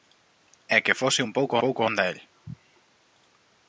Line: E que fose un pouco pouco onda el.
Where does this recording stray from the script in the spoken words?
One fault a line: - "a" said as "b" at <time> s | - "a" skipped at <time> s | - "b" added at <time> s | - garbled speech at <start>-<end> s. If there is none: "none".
none